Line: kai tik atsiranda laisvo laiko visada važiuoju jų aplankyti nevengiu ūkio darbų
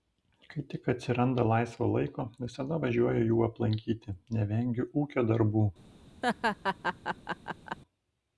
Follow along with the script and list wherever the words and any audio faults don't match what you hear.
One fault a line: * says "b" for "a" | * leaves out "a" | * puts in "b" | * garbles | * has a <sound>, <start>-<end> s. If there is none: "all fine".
* has a laugh, 6.2-7.8 s